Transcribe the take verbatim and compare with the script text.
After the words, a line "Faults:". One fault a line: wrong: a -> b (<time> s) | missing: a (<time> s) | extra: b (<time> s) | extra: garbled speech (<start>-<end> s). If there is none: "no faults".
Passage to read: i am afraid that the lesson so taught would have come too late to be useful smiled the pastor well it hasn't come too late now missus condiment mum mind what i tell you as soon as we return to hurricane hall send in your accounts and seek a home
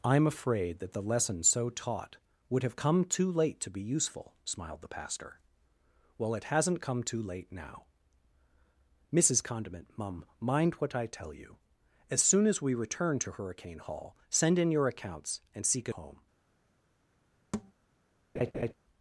i am afraid that the lesson so taught would have come too late to be useful smiled the pastor well it hasn't come too late now missus condiment mum mind what i tell you as soon as we return to hurricane hall send in your accounts and seek a home
Faults:
no faults